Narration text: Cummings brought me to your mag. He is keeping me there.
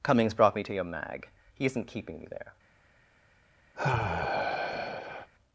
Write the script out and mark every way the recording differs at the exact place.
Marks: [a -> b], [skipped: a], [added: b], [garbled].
Cummings brought me to your mag. He [is -> isn't] keeping me there.